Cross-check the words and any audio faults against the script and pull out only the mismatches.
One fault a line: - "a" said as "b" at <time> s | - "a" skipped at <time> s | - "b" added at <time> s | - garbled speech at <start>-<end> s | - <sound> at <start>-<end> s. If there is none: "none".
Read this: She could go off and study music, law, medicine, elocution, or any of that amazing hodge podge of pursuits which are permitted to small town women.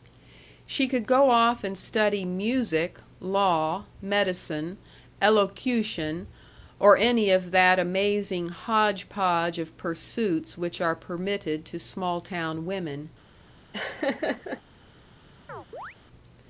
- laugh at 13.7-14.6 s
- chirp at 15.5-16.0 s